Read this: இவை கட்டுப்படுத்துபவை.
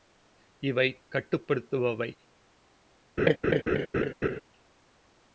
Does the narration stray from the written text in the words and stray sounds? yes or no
yes